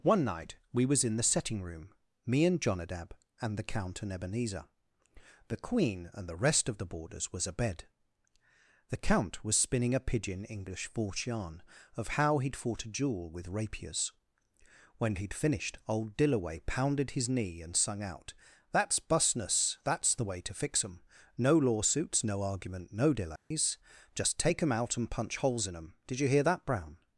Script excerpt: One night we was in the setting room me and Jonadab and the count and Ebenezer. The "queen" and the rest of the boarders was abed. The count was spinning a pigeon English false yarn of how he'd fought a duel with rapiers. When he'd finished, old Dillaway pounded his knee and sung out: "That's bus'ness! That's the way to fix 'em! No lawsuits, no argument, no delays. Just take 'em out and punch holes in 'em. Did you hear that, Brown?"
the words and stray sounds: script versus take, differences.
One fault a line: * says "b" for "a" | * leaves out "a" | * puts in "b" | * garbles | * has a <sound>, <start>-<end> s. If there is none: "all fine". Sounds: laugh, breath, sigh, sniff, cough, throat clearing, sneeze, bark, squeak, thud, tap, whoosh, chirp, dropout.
* has a dropout, 23.4-23.5 s